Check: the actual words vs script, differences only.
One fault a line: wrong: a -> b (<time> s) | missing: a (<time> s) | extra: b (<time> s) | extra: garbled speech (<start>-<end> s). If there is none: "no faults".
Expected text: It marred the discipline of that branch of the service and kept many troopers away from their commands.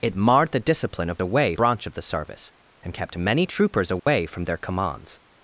wrong: that -> away (1.2 s)